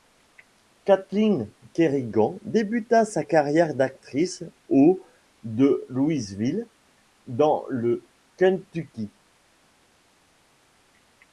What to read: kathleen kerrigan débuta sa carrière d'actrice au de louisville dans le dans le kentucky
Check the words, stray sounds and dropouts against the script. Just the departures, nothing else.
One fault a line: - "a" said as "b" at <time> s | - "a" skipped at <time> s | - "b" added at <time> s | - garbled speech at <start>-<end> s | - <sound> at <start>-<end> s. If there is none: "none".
- "dans le" skipped at 8.1 s